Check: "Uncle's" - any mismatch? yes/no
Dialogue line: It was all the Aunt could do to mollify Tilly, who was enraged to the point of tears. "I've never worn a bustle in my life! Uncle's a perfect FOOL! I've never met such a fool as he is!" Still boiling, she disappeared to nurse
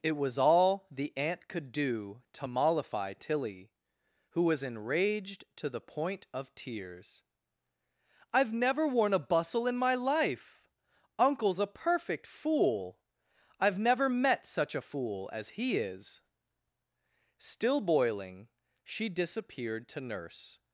no